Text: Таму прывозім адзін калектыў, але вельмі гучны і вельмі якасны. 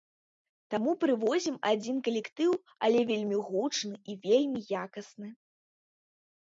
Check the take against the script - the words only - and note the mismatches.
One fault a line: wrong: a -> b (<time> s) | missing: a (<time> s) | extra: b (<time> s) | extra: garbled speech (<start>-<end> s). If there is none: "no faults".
no faults